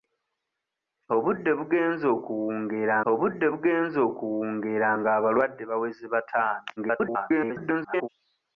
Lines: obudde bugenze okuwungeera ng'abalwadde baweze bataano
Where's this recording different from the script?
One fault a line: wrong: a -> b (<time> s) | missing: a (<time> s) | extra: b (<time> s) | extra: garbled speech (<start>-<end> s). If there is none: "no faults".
extra: obudde bugenze okuwungeera (3.1 s)
extra: garbled speech (6.8-8.1 s)